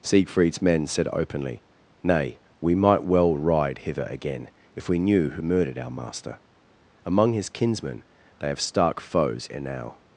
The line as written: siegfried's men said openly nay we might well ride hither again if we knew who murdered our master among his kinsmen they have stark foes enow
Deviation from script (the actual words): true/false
false